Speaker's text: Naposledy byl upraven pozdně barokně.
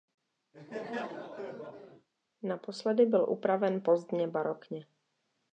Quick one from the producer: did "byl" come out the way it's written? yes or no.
yes